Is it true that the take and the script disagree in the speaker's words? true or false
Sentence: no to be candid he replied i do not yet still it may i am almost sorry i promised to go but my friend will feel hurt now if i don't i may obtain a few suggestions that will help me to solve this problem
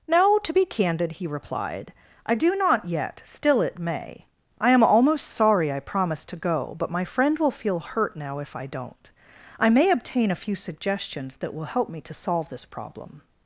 false